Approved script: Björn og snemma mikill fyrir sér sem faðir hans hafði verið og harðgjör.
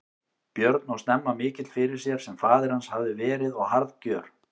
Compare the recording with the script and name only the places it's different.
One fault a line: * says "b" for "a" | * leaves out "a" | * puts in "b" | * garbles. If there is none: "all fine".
all fine